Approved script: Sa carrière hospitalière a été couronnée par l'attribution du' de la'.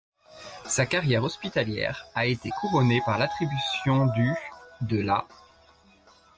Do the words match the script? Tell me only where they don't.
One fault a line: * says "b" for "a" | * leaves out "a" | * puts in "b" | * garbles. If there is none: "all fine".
all fine